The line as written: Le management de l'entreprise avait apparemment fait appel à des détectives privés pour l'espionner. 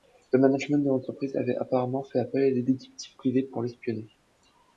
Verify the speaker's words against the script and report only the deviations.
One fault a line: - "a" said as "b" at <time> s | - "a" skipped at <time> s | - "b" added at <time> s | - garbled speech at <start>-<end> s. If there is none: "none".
none